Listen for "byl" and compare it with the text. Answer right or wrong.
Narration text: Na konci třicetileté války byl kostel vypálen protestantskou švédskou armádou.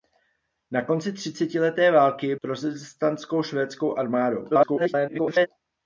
wrong